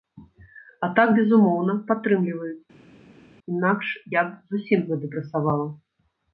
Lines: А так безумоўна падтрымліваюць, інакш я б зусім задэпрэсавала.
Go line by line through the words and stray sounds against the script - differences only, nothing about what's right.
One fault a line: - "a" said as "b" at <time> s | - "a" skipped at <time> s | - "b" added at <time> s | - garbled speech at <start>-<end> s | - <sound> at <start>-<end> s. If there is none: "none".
none